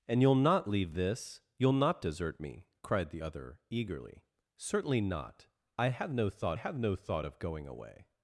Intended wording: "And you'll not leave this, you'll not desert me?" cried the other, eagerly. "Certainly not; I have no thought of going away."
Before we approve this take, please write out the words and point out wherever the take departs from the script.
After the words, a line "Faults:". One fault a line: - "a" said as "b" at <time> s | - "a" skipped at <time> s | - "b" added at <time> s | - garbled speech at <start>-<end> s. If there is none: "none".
"And you'll not leave this, you'll not desert me?" cried the other, eagerly. "Certainly not; I have no thought have no thought of going away."
Faults:
- "have no thought" added at 6.5 s